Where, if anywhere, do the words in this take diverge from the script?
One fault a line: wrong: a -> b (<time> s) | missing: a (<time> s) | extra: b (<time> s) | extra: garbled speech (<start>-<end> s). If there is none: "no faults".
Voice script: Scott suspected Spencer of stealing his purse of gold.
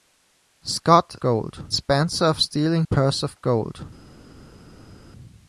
wrong: suspected -> gold (1.2 s)
missing: his (2.8 s)